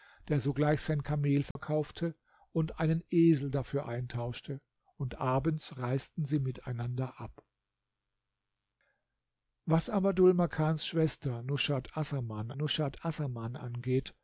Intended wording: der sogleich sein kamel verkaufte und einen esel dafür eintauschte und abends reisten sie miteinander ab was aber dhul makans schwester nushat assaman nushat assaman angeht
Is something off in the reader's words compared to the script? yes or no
no